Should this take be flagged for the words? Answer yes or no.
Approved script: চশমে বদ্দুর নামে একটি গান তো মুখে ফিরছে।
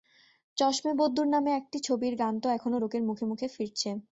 yes